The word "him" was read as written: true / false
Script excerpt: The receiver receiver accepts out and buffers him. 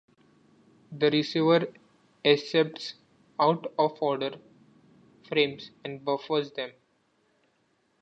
false